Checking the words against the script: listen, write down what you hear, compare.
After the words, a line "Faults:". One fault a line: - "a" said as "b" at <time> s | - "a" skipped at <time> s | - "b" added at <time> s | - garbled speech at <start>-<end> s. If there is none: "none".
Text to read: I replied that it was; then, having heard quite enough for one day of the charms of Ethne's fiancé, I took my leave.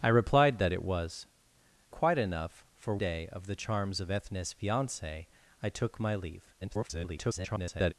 I replied that it was; quite enough for day of the charms of Ethne's fiancé, I took my leave. [garbled]
Faults:
- "then having heard" skipped at 1.3 s
- "one" skipped at 3.0 s
- garbled speech at 6.6-7.9 s